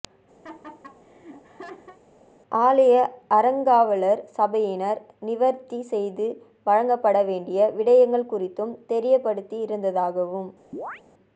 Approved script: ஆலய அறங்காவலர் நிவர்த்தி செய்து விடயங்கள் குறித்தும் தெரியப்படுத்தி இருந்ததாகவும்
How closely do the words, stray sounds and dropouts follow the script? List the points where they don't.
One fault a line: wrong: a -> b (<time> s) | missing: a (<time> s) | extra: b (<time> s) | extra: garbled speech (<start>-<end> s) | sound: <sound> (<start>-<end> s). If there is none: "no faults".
sound: laugh (0.4-2.0 s)
extra: சபையினர் (4.4 s)
extra: வழங்கப்பட வேண்டிய (6.7 s)
sound: chirp (10.7-11.0 s)